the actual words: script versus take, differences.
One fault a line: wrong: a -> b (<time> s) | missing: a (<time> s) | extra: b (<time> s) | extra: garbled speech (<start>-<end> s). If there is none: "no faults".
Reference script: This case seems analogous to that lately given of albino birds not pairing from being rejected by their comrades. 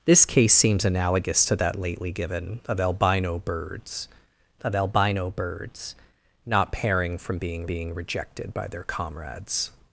extra: of albino birds (4.6 s)
extra: being (7.7 s)